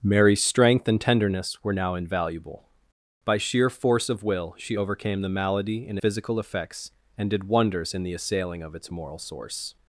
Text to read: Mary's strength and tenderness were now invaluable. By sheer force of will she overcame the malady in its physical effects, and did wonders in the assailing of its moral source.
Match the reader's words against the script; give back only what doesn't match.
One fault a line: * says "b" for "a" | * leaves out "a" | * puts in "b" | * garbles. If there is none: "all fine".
* leaves out "its"